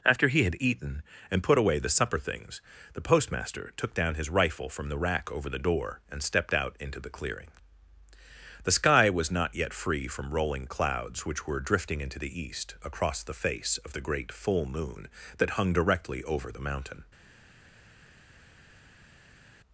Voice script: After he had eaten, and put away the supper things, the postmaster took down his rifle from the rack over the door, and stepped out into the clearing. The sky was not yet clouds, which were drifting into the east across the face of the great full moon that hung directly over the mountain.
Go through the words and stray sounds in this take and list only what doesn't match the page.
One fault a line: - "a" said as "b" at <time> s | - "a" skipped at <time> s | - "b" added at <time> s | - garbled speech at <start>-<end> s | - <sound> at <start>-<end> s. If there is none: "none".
- "free from rolling" added at 9.7 s